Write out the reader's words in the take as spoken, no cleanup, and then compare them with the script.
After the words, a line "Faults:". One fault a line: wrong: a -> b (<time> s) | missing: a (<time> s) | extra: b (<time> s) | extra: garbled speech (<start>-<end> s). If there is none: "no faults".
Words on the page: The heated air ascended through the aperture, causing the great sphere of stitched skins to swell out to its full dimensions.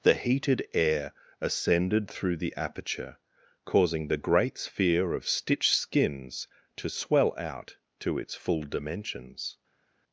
The heated air ascended through the aperture, causing the great sphere of stitched skins to swell out to its full dimensions.
Faults:
no faults